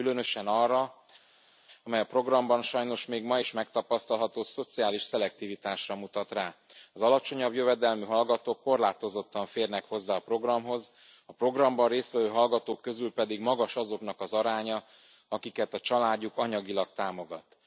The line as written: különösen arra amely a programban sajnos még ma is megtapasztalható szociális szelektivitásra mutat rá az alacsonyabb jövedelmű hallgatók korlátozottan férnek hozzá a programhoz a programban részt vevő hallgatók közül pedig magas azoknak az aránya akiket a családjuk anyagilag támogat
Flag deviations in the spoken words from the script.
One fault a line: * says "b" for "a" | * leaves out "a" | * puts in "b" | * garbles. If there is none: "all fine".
all fine